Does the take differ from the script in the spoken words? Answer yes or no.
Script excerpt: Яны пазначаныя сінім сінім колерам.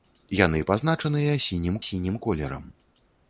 no